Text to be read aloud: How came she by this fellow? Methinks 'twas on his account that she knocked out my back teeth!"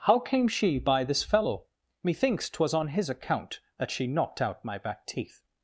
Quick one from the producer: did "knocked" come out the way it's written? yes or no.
yes